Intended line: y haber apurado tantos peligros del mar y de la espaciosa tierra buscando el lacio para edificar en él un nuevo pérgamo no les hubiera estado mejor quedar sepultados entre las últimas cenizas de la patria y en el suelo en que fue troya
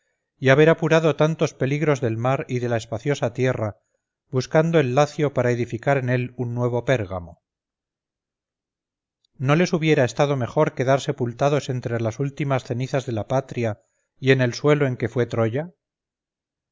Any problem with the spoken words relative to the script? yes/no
no